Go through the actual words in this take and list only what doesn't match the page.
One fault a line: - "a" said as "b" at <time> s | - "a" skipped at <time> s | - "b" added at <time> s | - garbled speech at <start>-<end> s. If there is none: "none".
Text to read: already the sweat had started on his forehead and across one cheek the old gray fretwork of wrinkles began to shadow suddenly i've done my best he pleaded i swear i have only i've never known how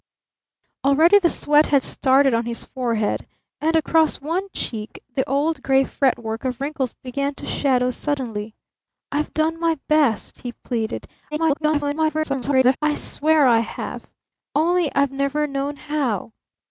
- garbled speech at 11.3-12.8 s